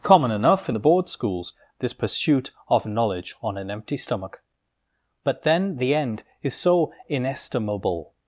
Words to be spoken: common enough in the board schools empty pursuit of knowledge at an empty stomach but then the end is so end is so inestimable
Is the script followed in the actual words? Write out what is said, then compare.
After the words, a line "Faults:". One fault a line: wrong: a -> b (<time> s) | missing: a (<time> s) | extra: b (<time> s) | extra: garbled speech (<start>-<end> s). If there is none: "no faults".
common enough in the board schools this pursuit of knowledge on an empty stomach but then the end is so inestimable
Faults:
wrong: empty -> this (1.8 s)
wrong: at -> on (3.4 s)
missing: end is so (6.9 s)